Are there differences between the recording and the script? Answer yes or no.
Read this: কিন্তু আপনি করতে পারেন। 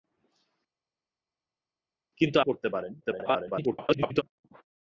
yes